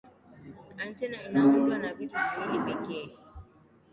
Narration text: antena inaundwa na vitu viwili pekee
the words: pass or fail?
pass